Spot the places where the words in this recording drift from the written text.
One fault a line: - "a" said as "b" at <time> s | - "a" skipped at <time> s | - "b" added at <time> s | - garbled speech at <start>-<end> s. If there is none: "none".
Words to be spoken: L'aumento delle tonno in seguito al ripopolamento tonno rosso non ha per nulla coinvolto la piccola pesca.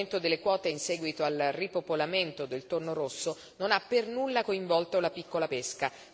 - "tonno" said as "quote" at 0.4 s
- "del" added at 2.4 s